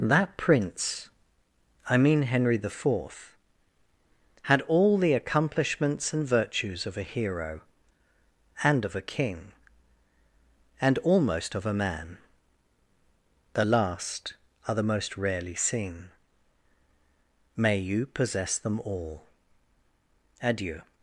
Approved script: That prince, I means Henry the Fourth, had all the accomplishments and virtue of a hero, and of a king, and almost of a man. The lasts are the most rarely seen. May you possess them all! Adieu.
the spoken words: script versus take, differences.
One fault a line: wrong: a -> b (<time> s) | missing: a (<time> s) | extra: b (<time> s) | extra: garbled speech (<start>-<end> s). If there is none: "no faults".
wrong: means -> mean (1.9 s)
wrong: virtue -> virtues (6.3 s)
wrong: lasts -> last (13.6 s)